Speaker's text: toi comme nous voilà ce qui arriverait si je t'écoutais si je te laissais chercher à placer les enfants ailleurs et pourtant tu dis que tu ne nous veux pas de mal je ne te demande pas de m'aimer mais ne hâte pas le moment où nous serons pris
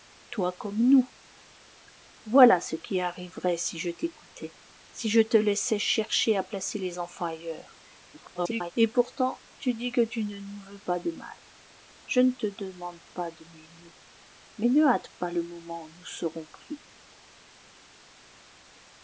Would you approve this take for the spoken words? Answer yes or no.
no